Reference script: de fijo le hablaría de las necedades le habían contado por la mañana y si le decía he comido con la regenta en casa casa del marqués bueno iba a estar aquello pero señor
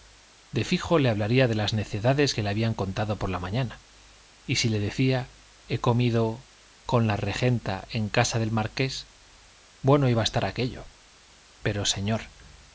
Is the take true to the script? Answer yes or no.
no